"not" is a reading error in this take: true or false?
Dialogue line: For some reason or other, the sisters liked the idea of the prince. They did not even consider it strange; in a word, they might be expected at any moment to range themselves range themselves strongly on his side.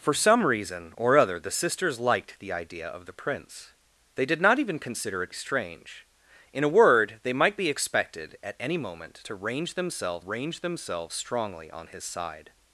false